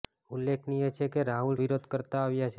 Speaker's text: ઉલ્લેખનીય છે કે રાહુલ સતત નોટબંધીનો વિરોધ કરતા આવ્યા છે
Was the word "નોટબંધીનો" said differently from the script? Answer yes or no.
yes